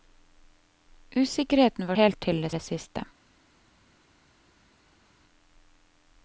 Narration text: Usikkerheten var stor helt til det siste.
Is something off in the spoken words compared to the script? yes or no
yes